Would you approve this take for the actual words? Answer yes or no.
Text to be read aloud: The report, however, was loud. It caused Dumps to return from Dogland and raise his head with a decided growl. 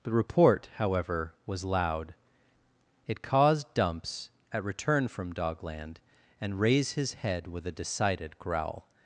no